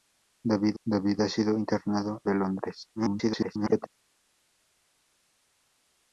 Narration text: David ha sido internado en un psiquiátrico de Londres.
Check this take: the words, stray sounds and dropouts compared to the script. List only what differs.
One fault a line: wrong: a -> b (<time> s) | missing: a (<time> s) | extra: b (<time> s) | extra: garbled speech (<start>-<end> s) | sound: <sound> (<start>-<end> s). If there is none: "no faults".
extra: david (0.8 s)
missing: en un psiquiátrico (2.2 s)
extra: garbled speech (3.0-3.9 s)